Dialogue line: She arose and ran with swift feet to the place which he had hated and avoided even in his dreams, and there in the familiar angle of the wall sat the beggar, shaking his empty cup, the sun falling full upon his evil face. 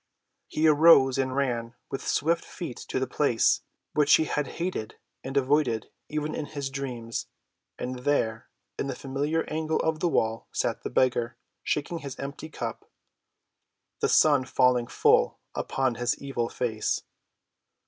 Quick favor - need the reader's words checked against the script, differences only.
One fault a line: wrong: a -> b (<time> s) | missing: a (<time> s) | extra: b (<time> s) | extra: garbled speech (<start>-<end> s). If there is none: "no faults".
wrong: She -> He (0.5 s)